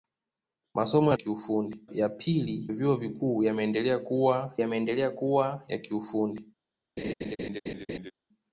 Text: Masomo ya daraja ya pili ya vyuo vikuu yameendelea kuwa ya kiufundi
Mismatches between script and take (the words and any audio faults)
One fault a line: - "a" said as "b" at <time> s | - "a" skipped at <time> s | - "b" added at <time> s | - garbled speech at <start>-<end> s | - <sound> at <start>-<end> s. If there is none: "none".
- "daraja" said as "kiufundi" at 1.1 s
- "ya" skipped at 2.7 s
- "yameendelea kuwa" added at 4.6 s
- laugh at 7.0-8.1 s